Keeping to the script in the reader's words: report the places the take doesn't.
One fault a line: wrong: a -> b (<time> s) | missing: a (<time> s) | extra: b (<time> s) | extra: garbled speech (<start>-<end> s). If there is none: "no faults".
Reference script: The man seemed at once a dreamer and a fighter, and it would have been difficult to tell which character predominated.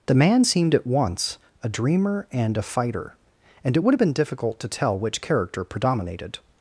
no faults